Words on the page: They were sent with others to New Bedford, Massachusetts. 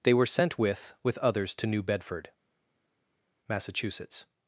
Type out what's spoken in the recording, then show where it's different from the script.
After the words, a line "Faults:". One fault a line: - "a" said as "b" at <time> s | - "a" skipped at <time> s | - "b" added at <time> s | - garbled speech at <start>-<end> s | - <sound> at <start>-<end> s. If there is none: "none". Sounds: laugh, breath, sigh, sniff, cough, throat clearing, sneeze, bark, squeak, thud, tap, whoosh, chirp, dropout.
They were sent with with others to New Bedford, Massachusetts.
Faults:
- "with" added at 1.0 s